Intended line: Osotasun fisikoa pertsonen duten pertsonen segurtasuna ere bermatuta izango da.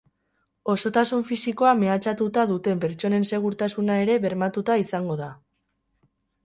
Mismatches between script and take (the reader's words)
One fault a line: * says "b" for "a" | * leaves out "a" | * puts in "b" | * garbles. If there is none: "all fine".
* says "mehatxatuta" for "pertsonen"